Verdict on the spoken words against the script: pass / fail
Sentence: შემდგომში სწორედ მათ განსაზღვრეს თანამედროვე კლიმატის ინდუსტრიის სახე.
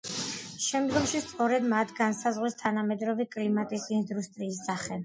pass